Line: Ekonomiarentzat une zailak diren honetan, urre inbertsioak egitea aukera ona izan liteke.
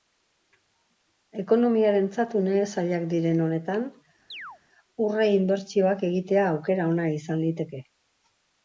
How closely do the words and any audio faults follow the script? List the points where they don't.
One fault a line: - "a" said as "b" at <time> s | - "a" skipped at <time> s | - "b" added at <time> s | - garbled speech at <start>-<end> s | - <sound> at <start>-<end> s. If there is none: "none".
- chirp at 4.3-4.6 s